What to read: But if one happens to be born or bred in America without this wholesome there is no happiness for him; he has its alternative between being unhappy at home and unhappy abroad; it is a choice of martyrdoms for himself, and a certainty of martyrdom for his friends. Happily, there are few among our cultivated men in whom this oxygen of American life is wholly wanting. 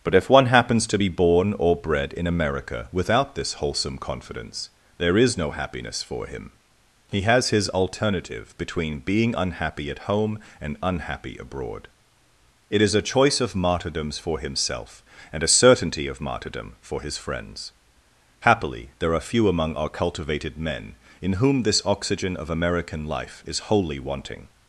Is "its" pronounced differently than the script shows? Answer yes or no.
yes